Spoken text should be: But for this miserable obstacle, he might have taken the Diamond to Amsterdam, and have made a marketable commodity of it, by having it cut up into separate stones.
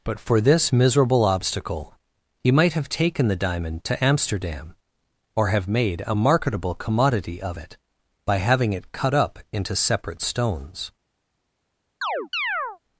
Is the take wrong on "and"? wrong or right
wrong